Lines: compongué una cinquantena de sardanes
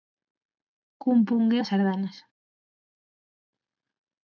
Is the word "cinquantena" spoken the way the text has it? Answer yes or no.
no